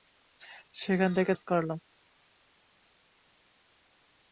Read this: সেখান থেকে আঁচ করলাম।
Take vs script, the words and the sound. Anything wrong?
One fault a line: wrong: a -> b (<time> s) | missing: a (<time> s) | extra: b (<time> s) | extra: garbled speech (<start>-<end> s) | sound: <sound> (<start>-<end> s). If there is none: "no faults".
no faults